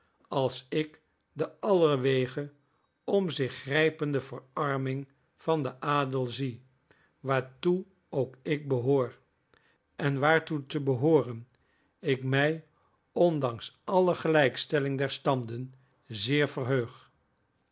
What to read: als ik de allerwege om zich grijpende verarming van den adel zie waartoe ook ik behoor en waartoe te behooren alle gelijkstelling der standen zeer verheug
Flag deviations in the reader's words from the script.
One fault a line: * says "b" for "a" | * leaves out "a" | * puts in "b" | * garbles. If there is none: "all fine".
* puts in "ik mij ondanks"